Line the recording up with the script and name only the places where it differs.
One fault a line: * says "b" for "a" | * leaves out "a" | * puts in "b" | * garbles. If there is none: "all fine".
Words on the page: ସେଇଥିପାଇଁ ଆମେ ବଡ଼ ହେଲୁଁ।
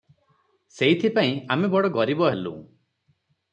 * puts in "ଗରିବ"